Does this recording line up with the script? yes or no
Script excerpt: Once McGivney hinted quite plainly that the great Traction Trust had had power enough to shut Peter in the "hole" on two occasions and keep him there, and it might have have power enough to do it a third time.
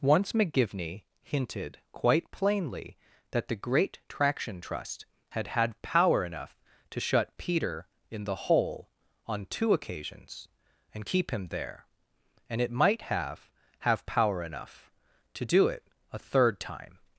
yes